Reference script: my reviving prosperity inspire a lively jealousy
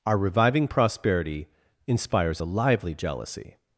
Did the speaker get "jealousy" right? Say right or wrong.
right